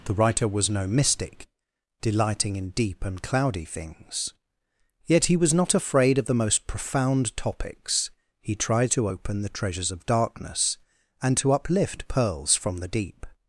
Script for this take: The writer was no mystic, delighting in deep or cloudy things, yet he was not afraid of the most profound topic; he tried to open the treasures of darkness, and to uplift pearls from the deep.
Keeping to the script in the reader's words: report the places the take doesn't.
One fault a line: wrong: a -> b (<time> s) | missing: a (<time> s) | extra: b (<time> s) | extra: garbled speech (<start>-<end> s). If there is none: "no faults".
wrong: or -> and (3.0 s)
wrong: topic -> topics (7.4 s)